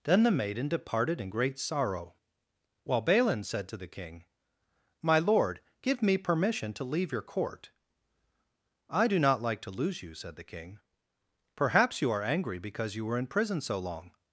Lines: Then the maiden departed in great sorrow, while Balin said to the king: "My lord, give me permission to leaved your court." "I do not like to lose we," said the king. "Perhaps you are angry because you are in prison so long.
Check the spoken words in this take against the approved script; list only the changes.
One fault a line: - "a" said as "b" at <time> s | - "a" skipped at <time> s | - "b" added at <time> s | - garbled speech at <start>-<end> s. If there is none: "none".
- "leaved" said as "leave" at 6.8 s
- "we" said as "you" at 10.0 s
- "are" said as "were" at 13.0 s